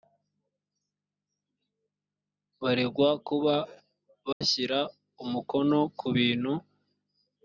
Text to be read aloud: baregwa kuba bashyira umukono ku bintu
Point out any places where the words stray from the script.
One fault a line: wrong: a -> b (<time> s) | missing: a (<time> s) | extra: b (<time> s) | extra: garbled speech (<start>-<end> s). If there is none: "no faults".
no faults